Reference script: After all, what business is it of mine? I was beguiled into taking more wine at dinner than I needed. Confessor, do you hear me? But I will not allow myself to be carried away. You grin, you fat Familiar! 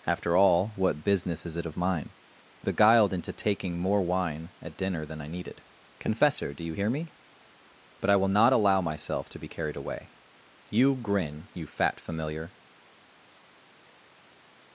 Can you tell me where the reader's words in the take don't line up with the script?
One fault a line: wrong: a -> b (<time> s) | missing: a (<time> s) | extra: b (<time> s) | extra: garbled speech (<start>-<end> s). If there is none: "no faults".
missing: was (2.7 s)